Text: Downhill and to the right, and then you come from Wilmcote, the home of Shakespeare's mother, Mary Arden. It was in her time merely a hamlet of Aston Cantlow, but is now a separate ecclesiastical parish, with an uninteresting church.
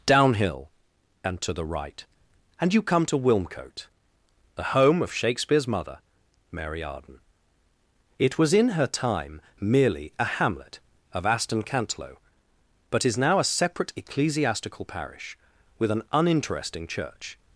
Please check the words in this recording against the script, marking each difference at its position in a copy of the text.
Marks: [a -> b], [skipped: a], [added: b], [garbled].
Downhill and to the right, and [skipped: then] you come [from -> to] Wilmcote, the home of Shakespeare's mother, Mary Arden. It was in her time merely a hamlet of Aston Cantlow, but is now a separate ecclesiastical parish, with an uninteresting church.